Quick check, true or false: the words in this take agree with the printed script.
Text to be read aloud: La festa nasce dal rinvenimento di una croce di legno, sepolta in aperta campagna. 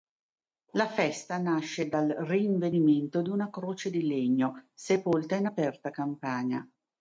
true